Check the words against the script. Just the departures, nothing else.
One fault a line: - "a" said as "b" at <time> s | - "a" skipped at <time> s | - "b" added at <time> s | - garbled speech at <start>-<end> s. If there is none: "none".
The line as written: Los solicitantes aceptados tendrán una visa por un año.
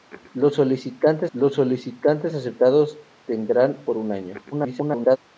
- "los solicitantes" added at 1.3 s
- "una visa" skipped at 3.8 s
- garbled speech at 4.5-5.2 s